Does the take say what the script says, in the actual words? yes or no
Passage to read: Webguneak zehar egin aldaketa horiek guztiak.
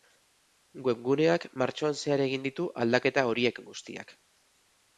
no